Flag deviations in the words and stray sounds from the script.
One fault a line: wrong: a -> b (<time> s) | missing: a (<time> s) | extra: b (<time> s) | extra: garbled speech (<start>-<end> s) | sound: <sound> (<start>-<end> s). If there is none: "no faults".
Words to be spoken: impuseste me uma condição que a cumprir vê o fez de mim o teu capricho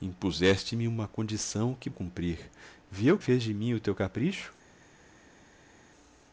no faults